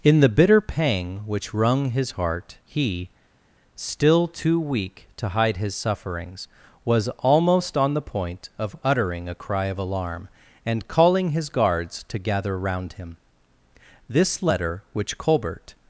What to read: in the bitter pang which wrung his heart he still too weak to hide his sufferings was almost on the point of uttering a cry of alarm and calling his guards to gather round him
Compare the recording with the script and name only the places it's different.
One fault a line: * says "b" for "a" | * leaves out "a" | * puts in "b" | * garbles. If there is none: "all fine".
* puts in "this letter which colbert"